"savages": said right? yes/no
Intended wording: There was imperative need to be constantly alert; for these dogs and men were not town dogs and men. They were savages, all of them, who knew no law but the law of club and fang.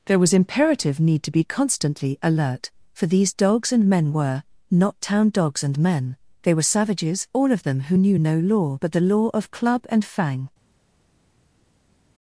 yes